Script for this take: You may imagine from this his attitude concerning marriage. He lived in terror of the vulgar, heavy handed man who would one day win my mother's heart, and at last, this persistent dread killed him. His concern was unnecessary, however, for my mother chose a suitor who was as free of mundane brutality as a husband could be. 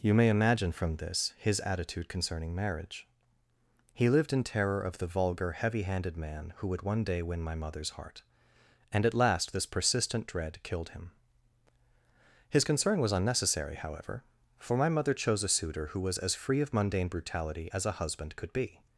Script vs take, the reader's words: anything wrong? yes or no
no